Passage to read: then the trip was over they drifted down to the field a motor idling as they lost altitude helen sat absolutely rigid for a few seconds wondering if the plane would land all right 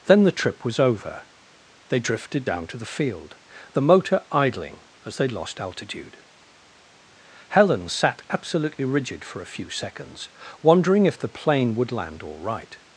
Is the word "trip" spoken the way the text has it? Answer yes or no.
yes